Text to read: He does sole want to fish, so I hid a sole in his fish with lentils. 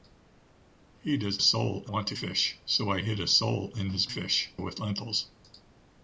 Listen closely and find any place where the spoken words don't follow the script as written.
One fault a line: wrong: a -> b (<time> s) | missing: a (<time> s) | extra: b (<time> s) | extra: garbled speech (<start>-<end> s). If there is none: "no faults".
no faults